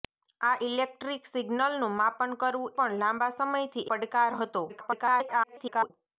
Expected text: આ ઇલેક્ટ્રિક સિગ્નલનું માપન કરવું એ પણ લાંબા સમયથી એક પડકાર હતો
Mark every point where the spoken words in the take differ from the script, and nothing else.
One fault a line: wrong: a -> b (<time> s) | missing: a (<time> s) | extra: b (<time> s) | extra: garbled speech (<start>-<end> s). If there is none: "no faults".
missing: એ (2.7 s)
missing: એક (3.9 s)
extra: garbled speech (4.7-5.9 s)